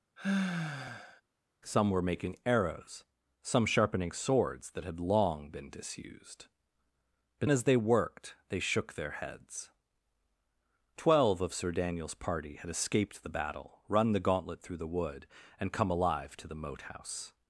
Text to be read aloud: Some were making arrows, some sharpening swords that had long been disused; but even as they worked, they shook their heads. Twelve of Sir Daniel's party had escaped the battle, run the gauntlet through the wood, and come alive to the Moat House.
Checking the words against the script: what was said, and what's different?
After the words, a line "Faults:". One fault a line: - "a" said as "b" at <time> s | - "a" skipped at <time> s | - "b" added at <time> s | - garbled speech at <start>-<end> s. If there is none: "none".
Some were making arrows, some sharpening swords that had long been disused; but as they worked, they shook their heads. Twelve of Sir Daniel's party had escaped the battle, run the gauntlet through the wood, and come alive to the Moat House.
Faults:
- "even" skipped at 7.5 s